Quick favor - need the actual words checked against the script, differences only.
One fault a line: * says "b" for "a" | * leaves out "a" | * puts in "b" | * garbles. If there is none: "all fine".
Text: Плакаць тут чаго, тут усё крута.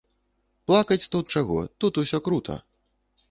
all fine